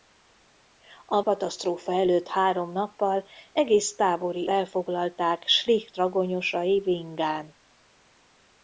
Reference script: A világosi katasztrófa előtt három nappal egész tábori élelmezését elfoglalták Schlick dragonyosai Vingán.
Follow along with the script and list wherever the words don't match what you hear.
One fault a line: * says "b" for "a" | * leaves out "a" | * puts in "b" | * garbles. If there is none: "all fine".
* leaves out "világosi"
* leaves out "élelmezését"